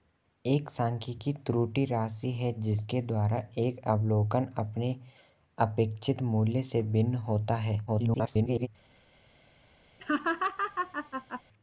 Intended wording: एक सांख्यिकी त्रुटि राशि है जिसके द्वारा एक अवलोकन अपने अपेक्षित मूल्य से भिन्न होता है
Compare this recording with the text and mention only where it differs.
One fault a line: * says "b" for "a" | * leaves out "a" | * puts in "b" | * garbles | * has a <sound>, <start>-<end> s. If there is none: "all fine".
* garbles
* has a laugh, 10.0-11.4 s